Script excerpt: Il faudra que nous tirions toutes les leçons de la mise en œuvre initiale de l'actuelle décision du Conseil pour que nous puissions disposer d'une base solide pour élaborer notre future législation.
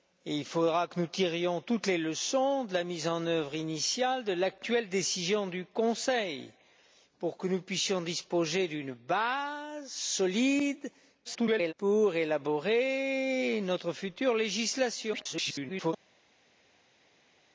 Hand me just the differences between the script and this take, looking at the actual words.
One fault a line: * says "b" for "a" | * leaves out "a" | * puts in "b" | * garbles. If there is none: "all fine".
* garbles
* garbles